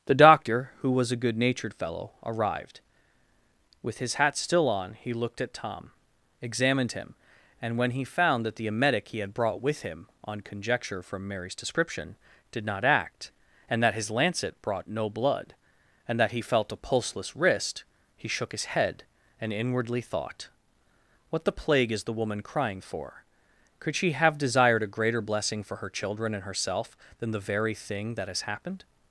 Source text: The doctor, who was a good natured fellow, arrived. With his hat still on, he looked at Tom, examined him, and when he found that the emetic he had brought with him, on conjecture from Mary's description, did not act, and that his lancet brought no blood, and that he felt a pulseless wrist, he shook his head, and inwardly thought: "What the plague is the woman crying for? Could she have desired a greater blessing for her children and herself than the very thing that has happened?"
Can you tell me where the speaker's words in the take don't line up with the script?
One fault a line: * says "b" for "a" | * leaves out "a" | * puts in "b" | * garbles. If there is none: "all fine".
all fine